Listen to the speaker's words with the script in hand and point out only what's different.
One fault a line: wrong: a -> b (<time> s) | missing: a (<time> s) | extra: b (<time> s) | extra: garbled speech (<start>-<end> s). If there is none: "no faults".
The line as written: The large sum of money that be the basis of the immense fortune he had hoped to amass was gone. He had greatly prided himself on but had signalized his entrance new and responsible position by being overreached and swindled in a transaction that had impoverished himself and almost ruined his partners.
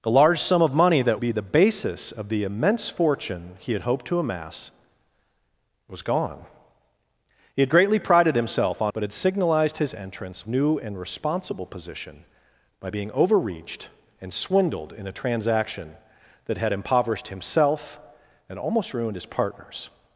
no faults